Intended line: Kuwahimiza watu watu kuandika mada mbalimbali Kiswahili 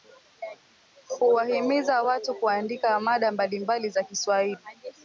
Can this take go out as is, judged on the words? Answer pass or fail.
fail